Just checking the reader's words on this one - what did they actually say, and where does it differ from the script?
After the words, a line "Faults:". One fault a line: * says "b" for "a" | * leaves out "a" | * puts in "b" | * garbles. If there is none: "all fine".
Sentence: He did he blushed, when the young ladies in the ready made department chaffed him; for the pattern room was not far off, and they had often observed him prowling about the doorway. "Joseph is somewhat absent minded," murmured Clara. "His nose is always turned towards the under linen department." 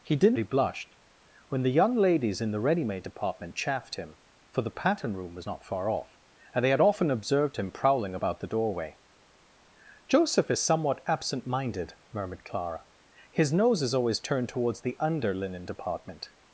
He did he blushed, when the young ladies in the ready made department chaffed him; for the pattern room was not far off, and they had often observed him prowling about the doorway. "Joseph is somewhat absent minded," murmured Clara. "His nose is always turned towards the under linen department."
Faults:
all fine